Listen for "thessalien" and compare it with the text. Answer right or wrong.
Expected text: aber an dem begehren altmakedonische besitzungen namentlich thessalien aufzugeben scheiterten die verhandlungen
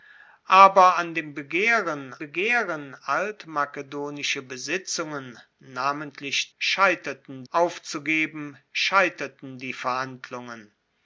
wrong